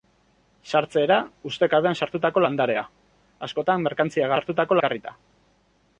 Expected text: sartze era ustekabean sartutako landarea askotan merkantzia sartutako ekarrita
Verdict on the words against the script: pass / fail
pass